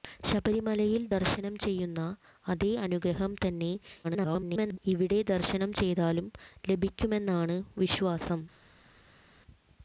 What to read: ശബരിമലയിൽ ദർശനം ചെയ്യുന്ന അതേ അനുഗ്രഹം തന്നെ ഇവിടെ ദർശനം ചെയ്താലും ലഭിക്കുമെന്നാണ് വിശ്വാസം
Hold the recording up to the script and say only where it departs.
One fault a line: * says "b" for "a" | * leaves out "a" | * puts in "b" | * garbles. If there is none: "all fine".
* garbles